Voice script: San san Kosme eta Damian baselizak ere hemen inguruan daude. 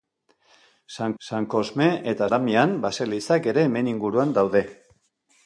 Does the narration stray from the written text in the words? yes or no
no